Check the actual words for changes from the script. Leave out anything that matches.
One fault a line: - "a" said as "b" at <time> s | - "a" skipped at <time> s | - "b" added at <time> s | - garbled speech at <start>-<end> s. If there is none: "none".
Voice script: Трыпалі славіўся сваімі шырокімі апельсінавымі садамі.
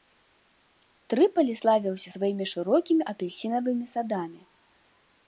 none